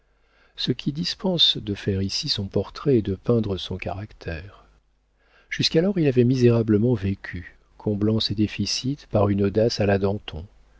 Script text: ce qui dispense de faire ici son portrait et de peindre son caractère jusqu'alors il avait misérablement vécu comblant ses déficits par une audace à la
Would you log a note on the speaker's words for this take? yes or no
no